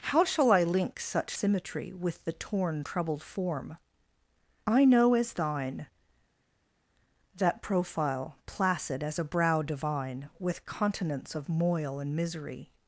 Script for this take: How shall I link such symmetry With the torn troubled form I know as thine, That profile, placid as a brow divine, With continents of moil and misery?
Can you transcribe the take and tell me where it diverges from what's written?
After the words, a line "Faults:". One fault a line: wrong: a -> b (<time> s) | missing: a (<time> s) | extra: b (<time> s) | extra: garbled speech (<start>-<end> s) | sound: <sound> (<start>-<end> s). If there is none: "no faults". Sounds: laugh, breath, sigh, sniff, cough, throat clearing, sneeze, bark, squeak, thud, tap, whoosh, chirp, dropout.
How shall I link such symmetry With the torn troubled form I know as thine, That profile, placid as a brow divine, With continents of moil and misery?
Faults:
no faults